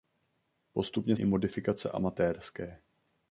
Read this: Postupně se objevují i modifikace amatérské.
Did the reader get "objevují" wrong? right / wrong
wrong